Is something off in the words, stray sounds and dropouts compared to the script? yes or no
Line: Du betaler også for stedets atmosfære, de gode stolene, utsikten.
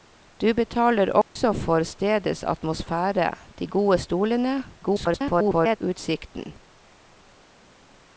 yes